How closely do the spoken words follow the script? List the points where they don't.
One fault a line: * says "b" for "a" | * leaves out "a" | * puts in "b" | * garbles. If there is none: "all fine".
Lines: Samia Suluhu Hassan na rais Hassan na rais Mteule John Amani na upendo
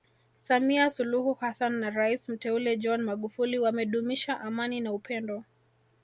* says "Mteule John Magufuli wamedumisha" for "Hassan na rais Mteule John"